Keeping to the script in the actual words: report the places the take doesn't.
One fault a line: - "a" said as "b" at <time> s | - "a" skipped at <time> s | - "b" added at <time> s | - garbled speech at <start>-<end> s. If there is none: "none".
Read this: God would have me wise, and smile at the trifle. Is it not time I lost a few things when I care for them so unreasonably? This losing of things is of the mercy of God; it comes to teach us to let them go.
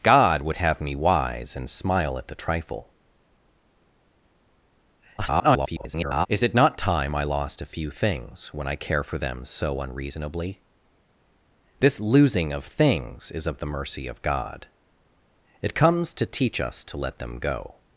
- garbled speech at 5.2-6.3 s